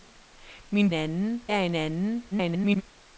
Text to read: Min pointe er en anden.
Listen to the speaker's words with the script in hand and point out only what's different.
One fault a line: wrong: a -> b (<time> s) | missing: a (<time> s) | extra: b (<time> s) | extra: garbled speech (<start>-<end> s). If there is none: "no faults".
wrong: pointe -> anden (0.9 s)
extra: garbled speech (2.3-2.8 s)